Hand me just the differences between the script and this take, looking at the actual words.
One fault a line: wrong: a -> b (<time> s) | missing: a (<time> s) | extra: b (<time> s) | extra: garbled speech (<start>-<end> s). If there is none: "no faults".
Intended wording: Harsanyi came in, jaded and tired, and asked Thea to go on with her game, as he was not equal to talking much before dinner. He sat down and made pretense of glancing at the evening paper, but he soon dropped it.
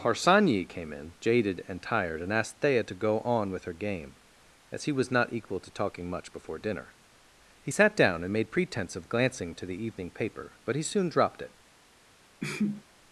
wrong: at -> to (9.5 s)